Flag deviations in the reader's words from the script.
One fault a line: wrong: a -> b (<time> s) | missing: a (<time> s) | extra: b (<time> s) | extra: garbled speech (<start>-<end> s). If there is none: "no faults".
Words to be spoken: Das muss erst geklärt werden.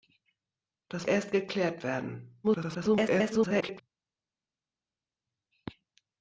missing: muss (1.1 s)
extra: garbled speech (2.4-3.8 s)